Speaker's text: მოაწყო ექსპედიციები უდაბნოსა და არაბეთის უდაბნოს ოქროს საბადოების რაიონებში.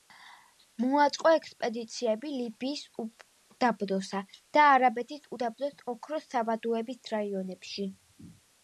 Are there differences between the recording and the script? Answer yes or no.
yes